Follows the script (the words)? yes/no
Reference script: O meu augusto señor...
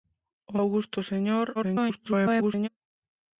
no